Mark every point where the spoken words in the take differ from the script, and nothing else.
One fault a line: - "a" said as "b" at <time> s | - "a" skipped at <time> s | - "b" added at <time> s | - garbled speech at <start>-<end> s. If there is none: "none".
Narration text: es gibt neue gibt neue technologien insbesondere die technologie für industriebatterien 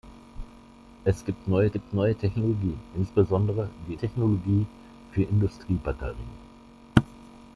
none